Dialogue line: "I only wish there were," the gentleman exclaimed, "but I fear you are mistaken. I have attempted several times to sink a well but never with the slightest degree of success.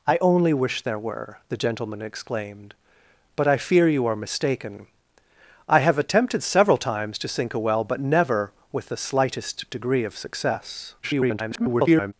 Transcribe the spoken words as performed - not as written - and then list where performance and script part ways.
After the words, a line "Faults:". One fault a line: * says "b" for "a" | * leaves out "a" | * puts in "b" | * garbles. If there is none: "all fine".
"I only wish there were," the gentleman exclaimed, "but I fear you are mistaken. I have attempted several times to sink a well but never with the slightest degree of success. [garbled]
Faults:
* garbles